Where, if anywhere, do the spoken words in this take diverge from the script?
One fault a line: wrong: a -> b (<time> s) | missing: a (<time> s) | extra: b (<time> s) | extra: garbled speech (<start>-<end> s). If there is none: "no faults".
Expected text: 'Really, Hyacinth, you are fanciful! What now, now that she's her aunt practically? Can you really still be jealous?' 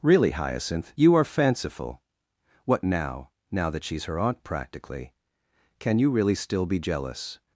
no faults